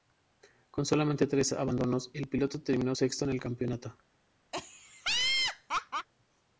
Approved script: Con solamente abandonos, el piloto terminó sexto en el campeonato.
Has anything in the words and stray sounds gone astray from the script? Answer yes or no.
yes